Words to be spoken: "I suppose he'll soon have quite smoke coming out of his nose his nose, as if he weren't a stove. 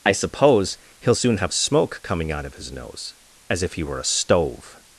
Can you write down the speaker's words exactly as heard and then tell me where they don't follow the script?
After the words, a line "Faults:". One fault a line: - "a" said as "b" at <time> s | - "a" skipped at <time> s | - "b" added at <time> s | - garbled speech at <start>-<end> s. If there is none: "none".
"I suppose he'll soon have smoke coming out of his nose, as if he were a stove.
Faults:
- "quite" skipped at 1.5 s
- "his nose" skipped at 3.2 s
- "weren't" said as "were" at 3.8 s